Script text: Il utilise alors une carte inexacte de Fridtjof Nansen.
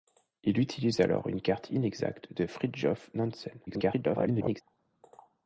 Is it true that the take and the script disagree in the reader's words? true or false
true